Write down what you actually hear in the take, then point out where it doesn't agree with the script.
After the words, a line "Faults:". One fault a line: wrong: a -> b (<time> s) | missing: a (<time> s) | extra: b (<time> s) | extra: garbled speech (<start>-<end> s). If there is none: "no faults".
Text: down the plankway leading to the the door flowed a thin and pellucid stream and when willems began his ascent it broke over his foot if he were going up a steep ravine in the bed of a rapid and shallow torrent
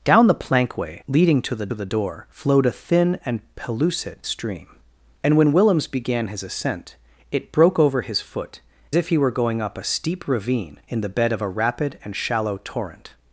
down the plankway leading to the the door flowed a thin and pellucid stream and when willems began his ascent it broke over his foot if he were going up a steep ravine in the bed of a rapid and shallow torrent
Faults:
no faults